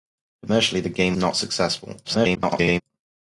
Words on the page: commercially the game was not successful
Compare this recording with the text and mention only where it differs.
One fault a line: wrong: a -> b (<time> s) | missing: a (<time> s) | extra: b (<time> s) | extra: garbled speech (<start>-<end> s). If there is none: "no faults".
missing: was (1.1 s)
extra: garbled speech (2.0-2.8 s)